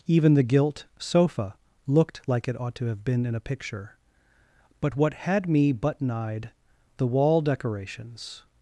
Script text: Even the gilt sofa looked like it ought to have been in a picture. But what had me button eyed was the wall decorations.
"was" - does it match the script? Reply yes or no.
no